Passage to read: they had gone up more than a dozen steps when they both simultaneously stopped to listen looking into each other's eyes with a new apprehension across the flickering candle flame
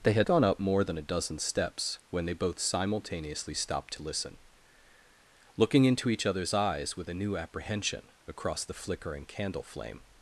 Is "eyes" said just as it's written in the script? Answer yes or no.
yes